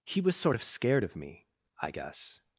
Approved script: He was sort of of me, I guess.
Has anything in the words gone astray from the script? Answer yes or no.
yes